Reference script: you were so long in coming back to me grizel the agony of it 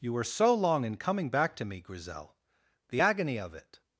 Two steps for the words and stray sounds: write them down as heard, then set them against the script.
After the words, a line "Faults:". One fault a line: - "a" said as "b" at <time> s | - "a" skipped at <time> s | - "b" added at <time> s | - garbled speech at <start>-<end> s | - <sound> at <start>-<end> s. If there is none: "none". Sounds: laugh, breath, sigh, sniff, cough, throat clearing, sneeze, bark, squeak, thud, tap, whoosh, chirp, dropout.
you were so long in coming back to me grizel the agony of it
Faults:
none